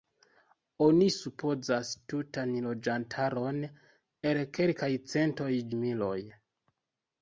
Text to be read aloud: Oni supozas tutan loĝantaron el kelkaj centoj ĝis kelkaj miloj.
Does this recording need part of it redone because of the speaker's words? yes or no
yes